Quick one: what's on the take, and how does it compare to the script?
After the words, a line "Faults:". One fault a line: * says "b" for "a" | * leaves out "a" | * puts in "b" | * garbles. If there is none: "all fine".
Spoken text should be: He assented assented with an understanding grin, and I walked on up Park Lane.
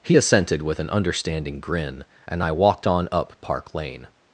He assented with an understanding grin, and I walked on up Park Lane.
Faults:
* leaves out "assented"